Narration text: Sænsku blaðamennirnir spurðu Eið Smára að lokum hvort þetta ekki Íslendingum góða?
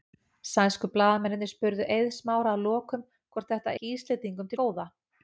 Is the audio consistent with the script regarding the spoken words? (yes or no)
yes